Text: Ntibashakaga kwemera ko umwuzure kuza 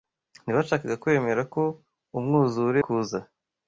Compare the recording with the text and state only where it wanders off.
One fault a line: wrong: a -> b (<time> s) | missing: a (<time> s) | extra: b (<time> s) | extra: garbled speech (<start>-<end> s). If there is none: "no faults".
no faults